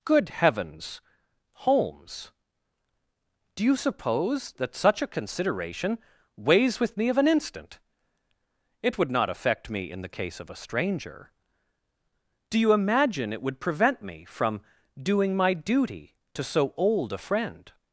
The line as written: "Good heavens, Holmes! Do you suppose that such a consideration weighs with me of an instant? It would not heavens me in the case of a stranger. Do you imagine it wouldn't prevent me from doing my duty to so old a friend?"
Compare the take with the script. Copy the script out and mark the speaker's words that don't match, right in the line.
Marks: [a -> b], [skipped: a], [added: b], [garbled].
"Good heavens, Holmes! Do you suppose that such a consideration weighs with me of an instant? It would not [heavens -> affect] me in the case of a stranger. Do you imagine it [wouldn't -> would] prevent me from doing my duty to so old a friend?"